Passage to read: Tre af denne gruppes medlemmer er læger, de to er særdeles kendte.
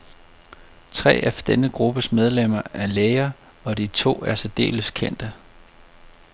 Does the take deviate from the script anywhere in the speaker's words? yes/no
yes